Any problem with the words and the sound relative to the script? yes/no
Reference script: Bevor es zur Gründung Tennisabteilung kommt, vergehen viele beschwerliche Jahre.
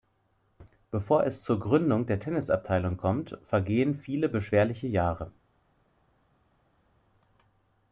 yes